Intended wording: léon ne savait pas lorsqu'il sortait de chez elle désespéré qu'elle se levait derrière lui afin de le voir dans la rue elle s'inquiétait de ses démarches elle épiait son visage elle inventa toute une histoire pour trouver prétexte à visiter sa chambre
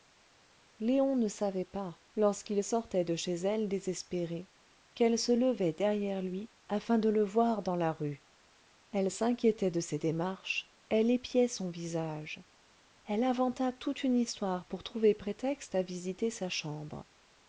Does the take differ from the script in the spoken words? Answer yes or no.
no